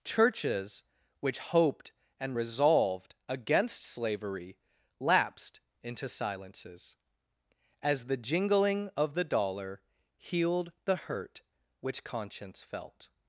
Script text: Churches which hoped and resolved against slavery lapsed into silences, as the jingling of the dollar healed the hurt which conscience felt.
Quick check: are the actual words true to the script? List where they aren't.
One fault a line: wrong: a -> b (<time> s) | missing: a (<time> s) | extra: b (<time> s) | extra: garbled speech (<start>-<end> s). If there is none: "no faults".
no faults